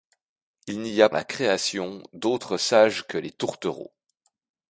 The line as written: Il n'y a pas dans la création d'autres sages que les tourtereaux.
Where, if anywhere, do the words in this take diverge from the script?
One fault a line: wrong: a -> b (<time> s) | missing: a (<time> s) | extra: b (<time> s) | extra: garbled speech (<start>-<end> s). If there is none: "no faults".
missing: pas dans (1.1 s)